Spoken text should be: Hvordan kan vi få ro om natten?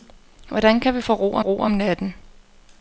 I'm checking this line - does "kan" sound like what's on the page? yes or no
yes